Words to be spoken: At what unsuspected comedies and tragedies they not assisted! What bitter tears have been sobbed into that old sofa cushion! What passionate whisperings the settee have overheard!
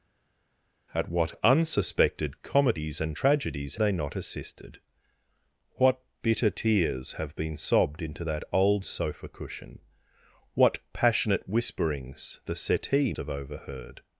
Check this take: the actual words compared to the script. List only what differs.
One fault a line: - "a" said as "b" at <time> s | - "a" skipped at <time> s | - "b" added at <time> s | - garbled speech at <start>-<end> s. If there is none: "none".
none